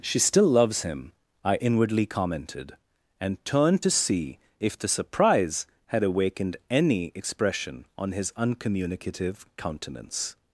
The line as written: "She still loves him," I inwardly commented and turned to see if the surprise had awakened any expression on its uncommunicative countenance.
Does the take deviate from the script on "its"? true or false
true